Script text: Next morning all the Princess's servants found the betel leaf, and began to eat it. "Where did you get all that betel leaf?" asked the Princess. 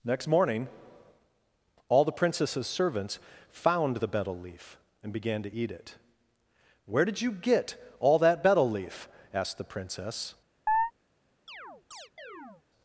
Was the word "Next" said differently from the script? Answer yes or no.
no